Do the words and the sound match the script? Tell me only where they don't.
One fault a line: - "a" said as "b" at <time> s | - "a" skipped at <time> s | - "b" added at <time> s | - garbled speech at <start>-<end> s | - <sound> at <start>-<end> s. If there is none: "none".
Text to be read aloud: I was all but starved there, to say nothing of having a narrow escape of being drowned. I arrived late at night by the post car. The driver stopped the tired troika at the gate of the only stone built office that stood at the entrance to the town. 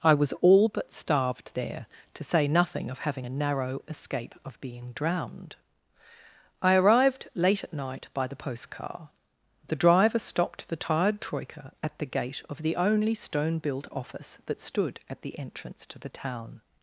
none